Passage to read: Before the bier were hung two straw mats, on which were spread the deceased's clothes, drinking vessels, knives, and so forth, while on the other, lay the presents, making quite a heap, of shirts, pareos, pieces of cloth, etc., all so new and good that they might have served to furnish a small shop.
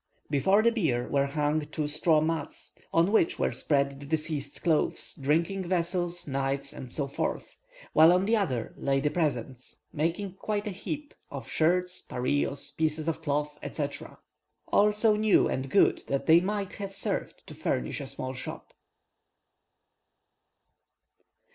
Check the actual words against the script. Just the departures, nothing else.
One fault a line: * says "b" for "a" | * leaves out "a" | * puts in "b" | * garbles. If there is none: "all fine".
all fine